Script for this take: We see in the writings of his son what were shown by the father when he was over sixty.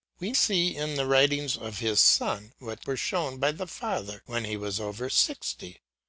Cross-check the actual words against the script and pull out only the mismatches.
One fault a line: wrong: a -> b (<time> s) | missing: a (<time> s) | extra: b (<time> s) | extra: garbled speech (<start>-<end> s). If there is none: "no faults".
no faults